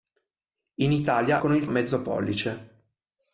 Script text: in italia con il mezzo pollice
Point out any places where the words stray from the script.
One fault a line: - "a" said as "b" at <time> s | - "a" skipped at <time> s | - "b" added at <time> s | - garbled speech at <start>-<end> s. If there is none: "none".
none